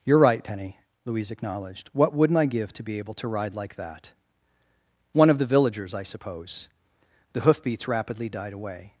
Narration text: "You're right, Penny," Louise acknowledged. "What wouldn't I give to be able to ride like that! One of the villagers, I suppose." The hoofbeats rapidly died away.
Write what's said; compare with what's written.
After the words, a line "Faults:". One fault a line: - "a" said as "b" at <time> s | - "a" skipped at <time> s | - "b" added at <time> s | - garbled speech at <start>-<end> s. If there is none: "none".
"You're right, Penny," Louise acknowledged. "What wouldn't I give to be able to ride like that! One of the villagers, I suppose." The hoofbeats rapidly died away.
Faults:
none